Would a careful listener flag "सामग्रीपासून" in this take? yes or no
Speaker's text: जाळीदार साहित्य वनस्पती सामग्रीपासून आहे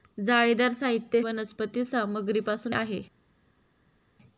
no